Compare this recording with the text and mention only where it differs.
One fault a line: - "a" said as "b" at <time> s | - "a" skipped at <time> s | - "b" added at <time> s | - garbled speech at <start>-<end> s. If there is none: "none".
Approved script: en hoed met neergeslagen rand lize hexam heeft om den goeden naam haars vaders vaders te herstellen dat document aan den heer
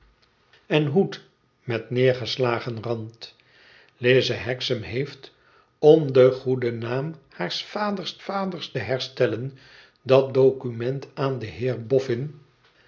none